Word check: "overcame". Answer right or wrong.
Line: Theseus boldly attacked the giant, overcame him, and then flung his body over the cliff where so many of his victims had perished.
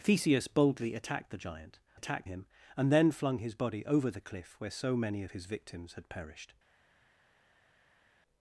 wrong